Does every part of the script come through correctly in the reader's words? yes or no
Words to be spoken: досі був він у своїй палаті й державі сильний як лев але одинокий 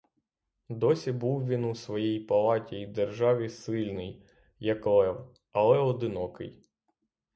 yes